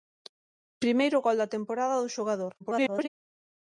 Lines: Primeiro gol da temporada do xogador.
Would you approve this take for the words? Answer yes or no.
no